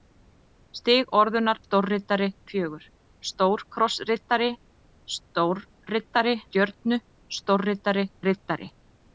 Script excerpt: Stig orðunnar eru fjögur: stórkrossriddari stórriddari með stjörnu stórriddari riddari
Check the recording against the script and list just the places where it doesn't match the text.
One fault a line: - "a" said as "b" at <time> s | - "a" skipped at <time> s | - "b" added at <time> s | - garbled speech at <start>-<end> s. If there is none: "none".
- "eru" said as "stórriddari" at 1.7 s
- "með" skipped at 6.4 s